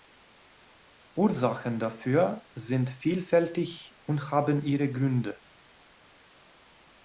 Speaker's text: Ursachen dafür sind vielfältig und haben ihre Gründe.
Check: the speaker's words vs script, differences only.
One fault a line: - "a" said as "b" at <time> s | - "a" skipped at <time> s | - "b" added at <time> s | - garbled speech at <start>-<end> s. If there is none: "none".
none